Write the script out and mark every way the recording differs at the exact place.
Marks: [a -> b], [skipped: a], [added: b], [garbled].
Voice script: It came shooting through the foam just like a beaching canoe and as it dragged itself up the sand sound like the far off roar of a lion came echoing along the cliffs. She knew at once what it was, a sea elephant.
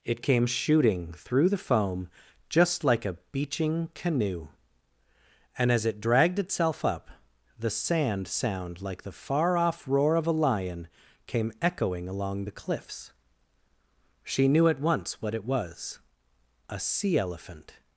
It came shooting through the foam just like a beaching canoe and as it dragged itself up the sand sound like the far off roar of a lion came echoing along the cliffs. She knew at once what it was, a sea elephant.